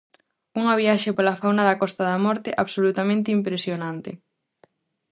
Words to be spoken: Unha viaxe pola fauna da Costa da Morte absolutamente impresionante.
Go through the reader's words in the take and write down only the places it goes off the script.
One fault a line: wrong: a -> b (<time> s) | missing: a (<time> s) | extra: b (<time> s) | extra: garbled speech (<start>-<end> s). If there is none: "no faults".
no faults